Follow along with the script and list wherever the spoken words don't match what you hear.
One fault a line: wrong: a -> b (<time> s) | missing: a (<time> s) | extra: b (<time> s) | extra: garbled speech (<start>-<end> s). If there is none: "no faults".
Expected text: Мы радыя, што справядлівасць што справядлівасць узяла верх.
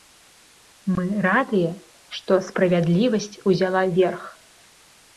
missing: што справядлівасць (3.3 s)